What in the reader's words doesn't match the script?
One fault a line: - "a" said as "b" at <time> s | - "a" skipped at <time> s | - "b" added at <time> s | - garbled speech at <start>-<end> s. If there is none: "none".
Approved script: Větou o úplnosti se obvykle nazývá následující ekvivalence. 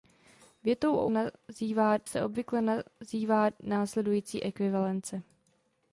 - "úplnosti" said as "nazývá" at 1.1 s